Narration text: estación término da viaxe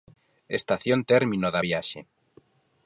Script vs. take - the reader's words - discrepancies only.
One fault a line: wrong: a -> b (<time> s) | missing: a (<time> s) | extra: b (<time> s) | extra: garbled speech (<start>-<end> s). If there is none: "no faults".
no faults